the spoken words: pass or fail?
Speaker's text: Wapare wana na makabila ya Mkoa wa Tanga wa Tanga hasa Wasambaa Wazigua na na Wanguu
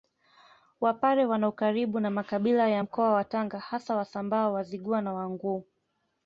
fail